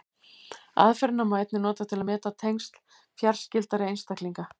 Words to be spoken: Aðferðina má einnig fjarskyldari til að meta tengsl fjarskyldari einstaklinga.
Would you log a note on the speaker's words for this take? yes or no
yes